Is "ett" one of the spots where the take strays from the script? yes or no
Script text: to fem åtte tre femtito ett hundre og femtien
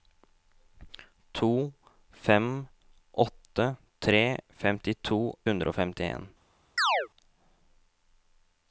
yes